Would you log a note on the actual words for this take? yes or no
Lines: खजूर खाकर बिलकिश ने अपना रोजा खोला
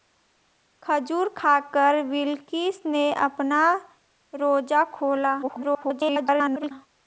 yes